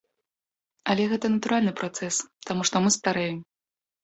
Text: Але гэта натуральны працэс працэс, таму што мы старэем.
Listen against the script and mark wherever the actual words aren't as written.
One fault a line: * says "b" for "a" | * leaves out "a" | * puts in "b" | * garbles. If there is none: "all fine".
* leaves out "працэс"